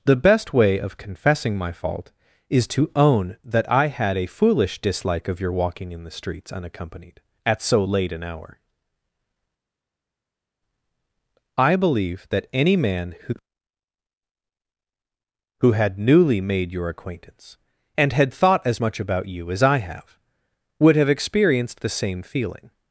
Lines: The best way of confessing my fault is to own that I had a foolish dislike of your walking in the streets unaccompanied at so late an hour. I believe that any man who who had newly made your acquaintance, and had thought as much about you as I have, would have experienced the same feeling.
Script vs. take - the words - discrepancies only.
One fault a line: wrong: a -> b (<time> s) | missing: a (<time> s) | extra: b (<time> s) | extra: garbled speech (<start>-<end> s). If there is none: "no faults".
no faults